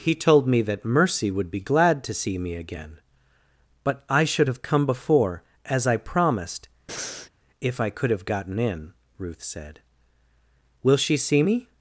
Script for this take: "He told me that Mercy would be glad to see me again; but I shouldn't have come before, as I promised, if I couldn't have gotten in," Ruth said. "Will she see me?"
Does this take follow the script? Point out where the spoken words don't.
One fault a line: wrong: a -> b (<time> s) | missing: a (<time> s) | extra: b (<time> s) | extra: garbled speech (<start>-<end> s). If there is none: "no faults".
wrong: shouldn't -> should (4.2 s)
wrong: couldn't -> could (7.9 s)